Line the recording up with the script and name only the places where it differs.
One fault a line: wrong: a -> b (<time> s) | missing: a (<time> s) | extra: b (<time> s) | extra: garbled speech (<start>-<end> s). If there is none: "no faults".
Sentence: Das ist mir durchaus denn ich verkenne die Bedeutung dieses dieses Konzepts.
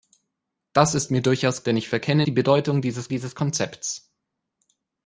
no faults